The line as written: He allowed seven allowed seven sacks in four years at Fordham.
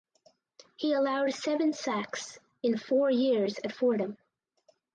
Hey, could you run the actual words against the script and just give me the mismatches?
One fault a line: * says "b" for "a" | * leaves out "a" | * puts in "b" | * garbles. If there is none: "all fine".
* leaves out "allowed seven"